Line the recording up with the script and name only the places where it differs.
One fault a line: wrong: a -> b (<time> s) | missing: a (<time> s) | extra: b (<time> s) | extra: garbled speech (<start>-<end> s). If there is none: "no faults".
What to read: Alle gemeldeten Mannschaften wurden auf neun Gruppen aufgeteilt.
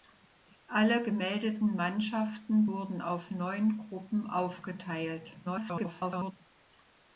extra: garbled speech (5.4-6.3 s)